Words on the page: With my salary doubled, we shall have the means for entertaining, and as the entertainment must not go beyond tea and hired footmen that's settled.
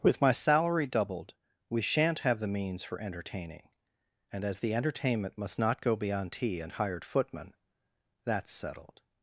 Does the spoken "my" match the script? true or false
true